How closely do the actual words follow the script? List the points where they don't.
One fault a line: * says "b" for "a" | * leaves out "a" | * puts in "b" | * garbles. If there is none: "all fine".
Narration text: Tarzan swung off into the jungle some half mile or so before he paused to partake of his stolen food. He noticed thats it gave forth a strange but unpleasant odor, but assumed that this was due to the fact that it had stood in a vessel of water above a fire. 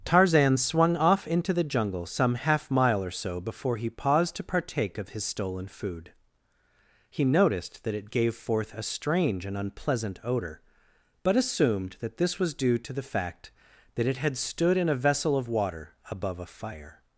* says "that" for "thats"
* says "and" for "but"